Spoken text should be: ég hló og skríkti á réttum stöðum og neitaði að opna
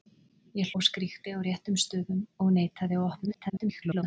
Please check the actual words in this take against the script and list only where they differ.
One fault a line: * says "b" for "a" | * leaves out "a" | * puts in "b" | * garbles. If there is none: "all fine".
* leaves out "hló"
* garbles